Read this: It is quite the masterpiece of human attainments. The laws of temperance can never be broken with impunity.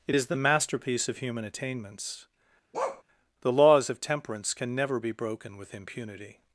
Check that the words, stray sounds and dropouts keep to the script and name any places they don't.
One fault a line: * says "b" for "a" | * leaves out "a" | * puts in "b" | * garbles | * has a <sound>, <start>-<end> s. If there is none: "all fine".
* leaves out "quite"
* has a bark, 2.7-3.0 s